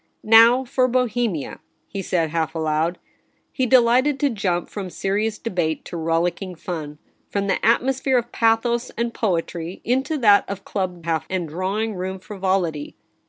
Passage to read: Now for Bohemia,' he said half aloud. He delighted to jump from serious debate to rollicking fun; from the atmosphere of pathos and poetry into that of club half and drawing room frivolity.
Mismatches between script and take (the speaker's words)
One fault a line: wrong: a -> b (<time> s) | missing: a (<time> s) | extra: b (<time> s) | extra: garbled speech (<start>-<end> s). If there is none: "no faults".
no faults